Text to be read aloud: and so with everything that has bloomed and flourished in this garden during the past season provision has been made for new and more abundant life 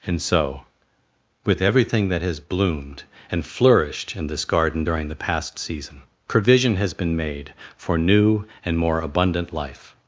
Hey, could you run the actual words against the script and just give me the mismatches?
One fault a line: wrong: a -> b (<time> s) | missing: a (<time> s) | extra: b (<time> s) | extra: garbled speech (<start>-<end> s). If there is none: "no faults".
no faults